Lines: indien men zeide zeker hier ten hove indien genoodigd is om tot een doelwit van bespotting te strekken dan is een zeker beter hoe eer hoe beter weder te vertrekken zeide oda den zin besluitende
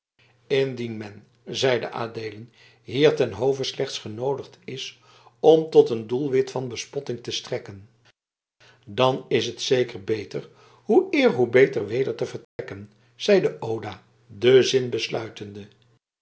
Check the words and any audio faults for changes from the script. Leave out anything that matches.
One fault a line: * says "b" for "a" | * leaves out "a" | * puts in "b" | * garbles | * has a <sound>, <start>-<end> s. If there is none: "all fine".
* says "adeelen" for "zeker"
* says "slechts" for "indien"
* says "het" for "een"
* has a dropout, 12.4-12.6 s